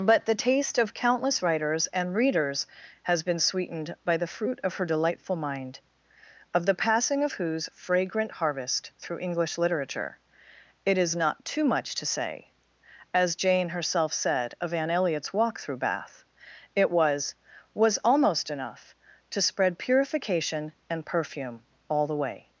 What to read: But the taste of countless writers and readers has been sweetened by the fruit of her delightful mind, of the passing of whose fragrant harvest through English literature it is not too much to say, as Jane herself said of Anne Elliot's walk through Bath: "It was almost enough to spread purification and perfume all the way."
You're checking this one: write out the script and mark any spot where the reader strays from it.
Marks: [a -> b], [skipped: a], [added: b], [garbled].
But the taste of countless writers and readers has been sweetened by the fruit of her delightful mind, of the passing of whose fragrant harvest through English literature it is not too much to say, as Jane herself said of Anne Elliot's walk through Bath: "It was [added: was] almost enough to spread purification and perfume all the way."